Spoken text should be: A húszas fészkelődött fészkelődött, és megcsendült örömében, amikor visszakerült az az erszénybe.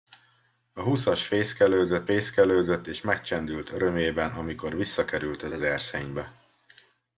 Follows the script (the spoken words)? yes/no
yes